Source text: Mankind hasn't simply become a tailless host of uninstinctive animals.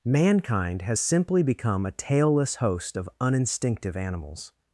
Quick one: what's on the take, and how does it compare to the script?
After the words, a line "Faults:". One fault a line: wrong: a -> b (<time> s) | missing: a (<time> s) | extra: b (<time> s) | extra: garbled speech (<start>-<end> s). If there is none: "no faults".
Mankind has simply become a tailless host of uninstinctive animals.
Faults:
wrong: hasn't -> has (0.8 s)